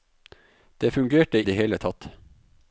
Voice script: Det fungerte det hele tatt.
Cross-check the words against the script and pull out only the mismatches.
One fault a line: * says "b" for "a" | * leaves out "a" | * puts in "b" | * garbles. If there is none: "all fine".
all fine